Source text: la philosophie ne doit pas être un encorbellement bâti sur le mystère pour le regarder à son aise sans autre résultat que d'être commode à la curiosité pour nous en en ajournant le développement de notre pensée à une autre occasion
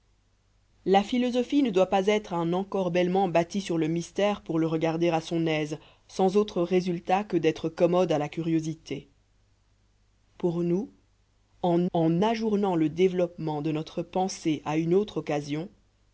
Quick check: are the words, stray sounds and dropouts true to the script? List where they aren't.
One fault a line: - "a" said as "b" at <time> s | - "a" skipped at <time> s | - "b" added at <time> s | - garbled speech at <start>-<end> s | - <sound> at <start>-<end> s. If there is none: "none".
none